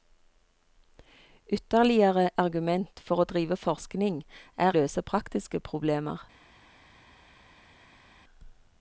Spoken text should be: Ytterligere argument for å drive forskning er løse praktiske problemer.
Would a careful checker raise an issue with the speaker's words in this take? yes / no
no